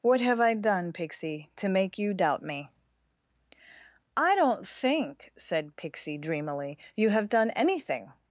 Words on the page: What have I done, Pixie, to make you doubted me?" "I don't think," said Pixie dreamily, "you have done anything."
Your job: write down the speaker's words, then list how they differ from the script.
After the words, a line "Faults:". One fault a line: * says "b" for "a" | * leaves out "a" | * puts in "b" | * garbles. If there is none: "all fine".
What have I done, Pixie, to make you doubt me?" "I don't think," said Pixie dreamily, "you have done anything."
Faults:
* says "doubt" for "doubted"